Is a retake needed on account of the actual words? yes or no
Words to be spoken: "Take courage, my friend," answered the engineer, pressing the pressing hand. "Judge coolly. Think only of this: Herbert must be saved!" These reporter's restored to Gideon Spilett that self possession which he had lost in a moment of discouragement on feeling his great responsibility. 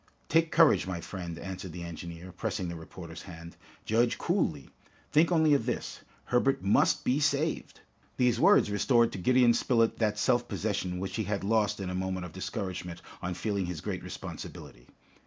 yes